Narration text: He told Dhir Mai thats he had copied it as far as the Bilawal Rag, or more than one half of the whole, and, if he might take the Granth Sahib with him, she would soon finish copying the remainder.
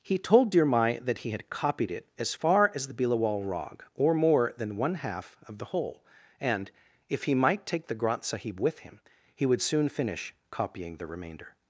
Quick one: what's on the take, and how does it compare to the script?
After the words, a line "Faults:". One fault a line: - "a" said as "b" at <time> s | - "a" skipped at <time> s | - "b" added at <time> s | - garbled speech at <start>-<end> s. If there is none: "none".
He told Dhir Mai that he had copied it as far as the Bilawal Rag, or more than one half of the whole, and, if he might take the Granth Sahib with him, he would soon finish copying the remainder.
Faults:
- "thats" said as "that" at 1.0 s
- "she" said as "he" at 9.3 s